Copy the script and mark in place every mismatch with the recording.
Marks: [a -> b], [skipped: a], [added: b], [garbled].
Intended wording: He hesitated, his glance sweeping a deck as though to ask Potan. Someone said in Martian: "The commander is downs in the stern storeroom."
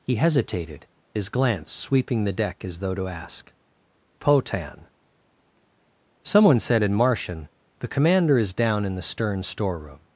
He hesitated, his glance sweeping [a -> the] deck as though to ask Potan. Someone said in Martian: "The commander is [downs -> down] in the stern storeroom."